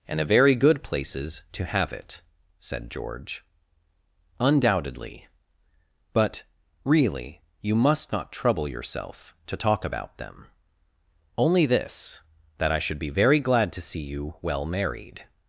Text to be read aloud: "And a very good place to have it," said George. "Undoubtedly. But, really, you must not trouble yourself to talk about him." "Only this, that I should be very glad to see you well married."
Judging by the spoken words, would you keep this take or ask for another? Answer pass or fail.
fail